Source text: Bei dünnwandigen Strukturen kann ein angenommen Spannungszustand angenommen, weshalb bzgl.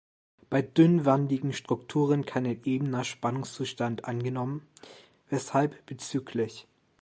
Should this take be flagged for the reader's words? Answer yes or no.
yes